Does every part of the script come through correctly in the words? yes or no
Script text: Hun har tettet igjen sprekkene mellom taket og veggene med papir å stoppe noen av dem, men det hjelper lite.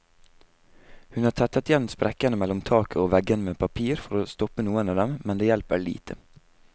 no